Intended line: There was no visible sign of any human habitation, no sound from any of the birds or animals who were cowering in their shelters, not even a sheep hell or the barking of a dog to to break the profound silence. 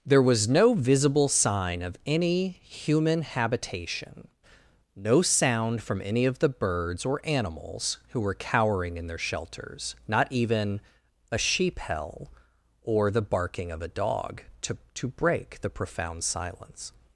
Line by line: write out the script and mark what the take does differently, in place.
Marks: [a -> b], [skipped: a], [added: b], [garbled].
There was no visible sign of any human habitation, no sound from any of the birds or animals who were cowering in their shelters, not even a sheep hell or the barking of a dog to to break the profound silence.